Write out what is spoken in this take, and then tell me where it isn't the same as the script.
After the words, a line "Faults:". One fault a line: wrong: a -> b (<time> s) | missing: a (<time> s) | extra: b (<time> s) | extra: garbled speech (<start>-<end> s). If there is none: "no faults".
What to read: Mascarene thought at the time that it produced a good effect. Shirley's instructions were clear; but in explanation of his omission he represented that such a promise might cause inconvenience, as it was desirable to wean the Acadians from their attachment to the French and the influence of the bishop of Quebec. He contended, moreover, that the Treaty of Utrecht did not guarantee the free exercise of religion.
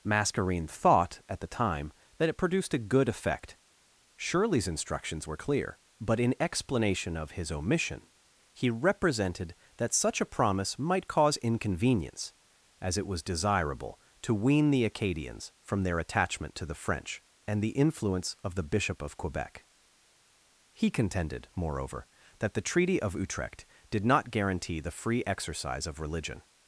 Mascarene thought at the time that it produced a good effect. Shirley's instructions were clear; but in explanation of his omission he represented that such a promise might cause inconvenience, as it was desirable to wean the Acadians from their attachment to the French and the influence of the bishop of Quebec. He contended, moreover, that the Treaty of Utrecht did not guarantee the free exercise of religion.
Faults:
no faults